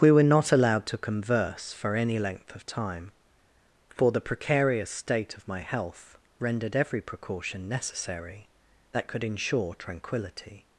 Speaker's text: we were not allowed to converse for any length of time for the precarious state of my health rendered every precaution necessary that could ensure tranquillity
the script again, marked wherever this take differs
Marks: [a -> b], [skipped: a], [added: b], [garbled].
we were not allowed to converse for any length of time for the precarious state of my health rendered every precaution necessary that could ensure tranquillity